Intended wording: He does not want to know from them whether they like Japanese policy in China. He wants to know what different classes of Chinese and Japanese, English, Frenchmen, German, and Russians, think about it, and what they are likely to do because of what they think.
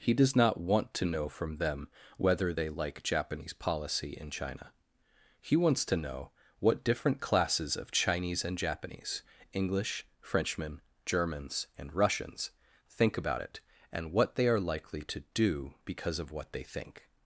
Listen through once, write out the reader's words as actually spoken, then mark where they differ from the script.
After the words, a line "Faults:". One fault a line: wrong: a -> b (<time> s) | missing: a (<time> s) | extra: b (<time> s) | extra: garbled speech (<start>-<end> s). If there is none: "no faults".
He does not want to know from them whether they like Japanese policy in China. He wants to know what different classes of Chinese and Japanese, English, Frenchmen, Germans, and Russians, think about it, and what they are likely to do because of what they think.
Faults:
wrong: German -> Germans (11.0 s)